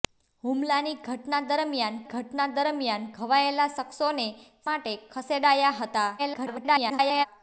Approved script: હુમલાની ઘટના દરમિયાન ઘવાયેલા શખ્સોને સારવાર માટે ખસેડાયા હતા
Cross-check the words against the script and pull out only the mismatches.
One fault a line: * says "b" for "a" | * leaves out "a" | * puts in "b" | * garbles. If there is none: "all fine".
* puts in "ઘટના દરમિયાન"
* leaves out "સારવાર"
* garbles